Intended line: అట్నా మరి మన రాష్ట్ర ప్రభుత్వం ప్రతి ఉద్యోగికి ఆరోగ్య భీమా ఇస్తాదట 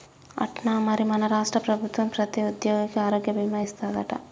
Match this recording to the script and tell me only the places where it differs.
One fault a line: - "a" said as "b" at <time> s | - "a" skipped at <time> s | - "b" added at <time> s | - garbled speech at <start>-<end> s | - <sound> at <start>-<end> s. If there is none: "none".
none